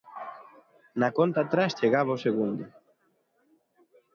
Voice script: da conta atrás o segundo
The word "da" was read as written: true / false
false